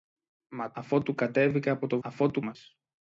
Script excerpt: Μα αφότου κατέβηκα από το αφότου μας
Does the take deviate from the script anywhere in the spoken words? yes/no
no